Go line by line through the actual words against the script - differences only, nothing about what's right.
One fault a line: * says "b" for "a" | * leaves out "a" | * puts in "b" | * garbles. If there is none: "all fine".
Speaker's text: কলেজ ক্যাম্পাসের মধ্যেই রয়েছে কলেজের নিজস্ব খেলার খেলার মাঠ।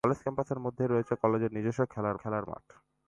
all fine